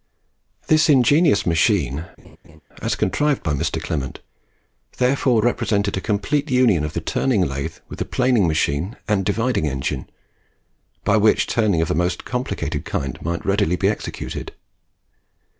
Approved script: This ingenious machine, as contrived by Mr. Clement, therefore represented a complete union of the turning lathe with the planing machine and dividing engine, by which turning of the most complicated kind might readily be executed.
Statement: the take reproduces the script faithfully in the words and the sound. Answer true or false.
false